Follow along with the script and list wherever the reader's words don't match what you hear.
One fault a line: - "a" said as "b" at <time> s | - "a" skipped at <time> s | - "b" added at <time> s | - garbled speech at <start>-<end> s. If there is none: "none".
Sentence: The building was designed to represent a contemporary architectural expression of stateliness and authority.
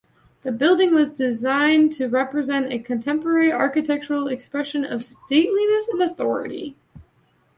none